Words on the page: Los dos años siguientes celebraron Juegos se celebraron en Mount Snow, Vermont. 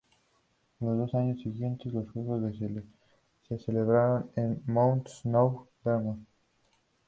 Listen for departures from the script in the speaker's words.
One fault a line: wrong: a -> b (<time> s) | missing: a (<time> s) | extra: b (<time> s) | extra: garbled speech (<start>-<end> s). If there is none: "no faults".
wrong: celebraron -> los (1.9 s)